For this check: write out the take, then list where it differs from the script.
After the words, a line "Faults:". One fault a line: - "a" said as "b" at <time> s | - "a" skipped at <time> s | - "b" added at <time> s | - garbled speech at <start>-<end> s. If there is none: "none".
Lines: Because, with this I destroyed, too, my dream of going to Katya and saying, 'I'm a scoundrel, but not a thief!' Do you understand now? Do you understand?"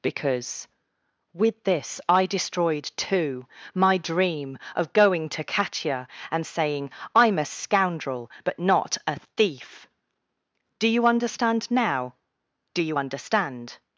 Because, with this I destroyed, too, my dream of going to Katya and saying, 'I'm a scoundrel, but not a thief!' Do you understand now? Do you understand?"
Faults:
none